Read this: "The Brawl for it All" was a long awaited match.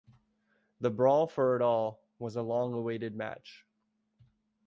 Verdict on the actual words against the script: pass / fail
pass